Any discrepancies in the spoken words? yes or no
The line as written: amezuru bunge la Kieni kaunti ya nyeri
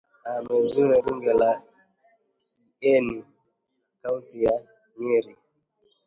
no